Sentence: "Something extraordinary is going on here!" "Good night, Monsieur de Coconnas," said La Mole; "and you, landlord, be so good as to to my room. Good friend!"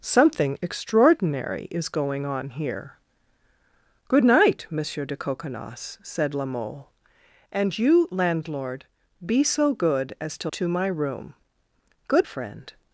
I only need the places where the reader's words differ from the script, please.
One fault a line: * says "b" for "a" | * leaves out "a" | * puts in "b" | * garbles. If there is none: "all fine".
all fine